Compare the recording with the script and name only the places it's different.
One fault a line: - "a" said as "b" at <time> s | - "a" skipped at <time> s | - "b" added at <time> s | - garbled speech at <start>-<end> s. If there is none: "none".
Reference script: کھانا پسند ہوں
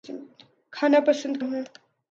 none